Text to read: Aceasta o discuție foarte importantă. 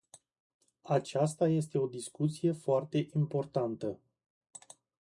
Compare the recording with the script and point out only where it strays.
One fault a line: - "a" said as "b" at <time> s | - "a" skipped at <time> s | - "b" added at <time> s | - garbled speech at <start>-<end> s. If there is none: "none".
- "este" added at 1.5 s